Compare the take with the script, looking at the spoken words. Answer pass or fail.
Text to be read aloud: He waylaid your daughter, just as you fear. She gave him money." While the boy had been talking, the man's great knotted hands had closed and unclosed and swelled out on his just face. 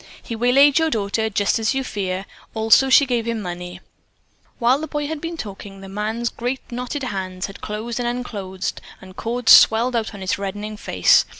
fail